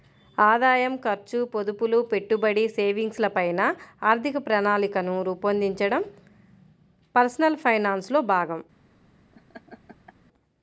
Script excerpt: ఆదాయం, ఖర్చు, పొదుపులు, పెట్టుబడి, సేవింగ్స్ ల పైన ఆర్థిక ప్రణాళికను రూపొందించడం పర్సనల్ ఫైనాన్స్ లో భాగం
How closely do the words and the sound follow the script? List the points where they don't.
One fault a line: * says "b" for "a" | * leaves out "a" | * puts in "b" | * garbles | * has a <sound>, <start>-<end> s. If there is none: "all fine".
* has a laugh, 9.3-10.1 s